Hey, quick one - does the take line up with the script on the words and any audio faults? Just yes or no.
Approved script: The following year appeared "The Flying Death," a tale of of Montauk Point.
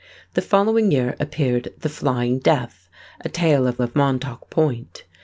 yes